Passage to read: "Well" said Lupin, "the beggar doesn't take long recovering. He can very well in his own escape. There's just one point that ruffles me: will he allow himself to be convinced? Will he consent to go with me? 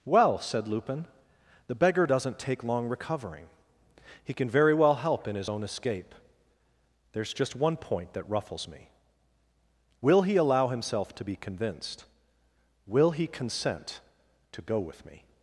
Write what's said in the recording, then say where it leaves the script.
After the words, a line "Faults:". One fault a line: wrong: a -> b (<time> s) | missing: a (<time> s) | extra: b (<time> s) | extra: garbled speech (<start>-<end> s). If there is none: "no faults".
"Well" said Lupin, "the beggar doesn't take long recovering. He can very well help in his own escape. There's just one point that ruffles me: will he allow himself to be convinced? Will he consent to go with me?
Faults:
extra: help (4.9 s)